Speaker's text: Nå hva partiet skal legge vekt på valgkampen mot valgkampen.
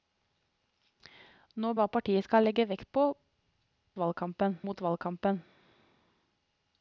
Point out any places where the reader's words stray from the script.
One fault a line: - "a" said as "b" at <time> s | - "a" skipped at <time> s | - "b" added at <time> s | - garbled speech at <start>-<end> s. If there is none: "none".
none